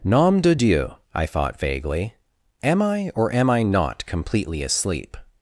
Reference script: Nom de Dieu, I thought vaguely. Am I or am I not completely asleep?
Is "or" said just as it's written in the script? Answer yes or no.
yes